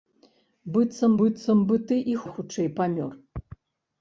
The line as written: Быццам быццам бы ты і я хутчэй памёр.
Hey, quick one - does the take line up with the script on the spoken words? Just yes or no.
yes